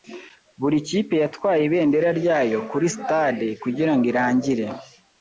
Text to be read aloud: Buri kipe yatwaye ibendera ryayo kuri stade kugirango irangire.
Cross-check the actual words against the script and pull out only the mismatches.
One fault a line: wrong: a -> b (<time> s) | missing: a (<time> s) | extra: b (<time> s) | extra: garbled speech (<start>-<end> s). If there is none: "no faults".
no faults